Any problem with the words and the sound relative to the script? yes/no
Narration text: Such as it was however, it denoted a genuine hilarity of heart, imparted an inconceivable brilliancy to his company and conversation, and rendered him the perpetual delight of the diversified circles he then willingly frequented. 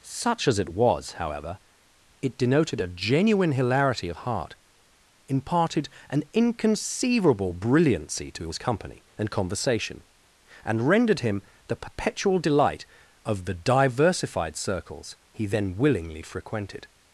no